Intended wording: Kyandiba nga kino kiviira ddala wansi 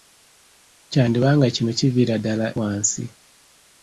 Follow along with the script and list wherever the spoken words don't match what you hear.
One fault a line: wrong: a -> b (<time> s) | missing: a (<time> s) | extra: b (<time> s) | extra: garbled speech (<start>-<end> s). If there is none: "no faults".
no faults